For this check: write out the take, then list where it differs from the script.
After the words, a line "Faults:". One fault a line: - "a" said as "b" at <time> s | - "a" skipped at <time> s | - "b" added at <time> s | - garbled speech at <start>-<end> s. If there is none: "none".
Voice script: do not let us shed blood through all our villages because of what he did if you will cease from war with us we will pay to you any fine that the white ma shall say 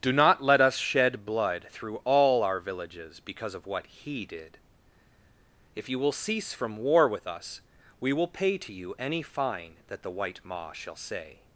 do not let us shed blood through all our villages because of what he did if you will cease from war with us we will pay to you any fine that the white ma shall say
Faults:
none